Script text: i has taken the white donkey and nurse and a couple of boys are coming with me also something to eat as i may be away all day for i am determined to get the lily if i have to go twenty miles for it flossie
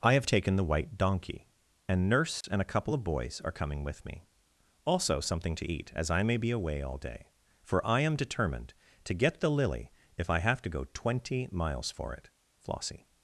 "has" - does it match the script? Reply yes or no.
no